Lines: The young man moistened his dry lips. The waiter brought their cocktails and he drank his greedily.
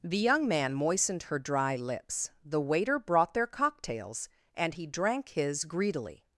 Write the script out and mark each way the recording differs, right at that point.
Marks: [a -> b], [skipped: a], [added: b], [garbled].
The young man moistened [his -> her] dry lips. The waiter brought their cocktails and he drank his greedily.